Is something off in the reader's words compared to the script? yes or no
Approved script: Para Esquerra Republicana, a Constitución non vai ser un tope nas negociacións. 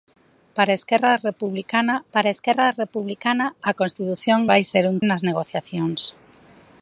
yes